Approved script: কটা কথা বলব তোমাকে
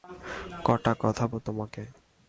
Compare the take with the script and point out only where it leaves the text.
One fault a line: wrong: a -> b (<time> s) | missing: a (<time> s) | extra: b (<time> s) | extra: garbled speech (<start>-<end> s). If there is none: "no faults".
missing: বলব (1.2 s)